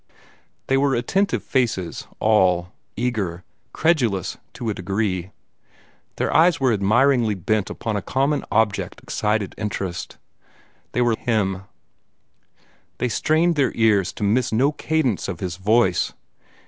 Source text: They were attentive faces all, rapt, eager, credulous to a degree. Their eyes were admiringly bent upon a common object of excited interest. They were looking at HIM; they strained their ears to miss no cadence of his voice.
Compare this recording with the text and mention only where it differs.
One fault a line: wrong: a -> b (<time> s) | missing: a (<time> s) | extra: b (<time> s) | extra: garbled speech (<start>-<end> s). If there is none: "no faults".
missing: rapt (2.7 s)
missing: of (9.0 s)
missing: looking at (11.2 s)